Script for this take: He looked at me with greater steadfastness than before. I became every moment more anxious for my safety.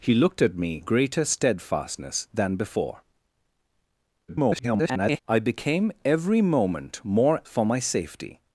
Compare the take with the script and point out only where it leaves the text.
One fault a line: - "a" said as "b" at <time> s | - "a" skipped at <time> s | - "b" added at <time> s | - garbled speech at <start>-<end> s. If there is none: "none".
- "with" skipped at 0.8 s
- garbled speech at 4.3-5.2 s
- "anxious" skipped at 7.4 s